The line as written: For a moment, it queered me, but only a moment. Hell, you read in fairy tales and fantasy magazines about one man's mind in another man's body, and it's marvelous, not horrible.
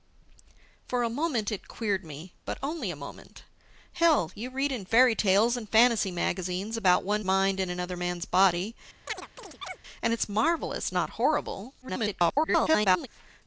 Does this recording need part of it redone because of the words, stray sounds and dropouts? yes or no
yes